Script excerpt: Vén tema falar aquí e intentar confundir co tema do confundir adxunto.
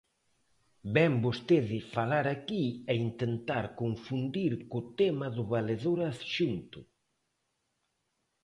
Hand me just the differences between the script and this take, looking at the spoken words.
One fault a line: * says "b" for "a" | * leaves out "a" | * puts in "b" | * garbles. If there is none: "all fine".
* says "vostede" for "tema"
* says "valedor" for "confundir"